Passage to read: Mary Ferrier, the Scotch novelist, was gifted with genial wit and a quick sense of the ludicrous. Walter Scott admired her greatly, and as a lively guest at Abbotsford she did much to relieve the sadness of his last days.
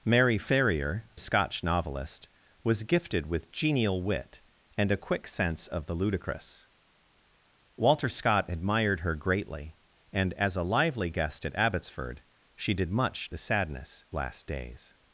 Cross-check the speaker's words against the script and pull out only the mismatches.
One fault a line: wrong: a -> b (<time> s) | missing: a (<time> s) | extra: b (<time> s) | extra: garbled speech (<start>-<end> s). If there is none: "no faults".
missing: the (1.1 s)
missing: to relieve (13.3 s)
missing: of his (14.1 s)